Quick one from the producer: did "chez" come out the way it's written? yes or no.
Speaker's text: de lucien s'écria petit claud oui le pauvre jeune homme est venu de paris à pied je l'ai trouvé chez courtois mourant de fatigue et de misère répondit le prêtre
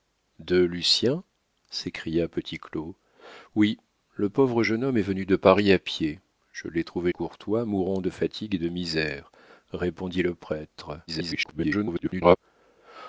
no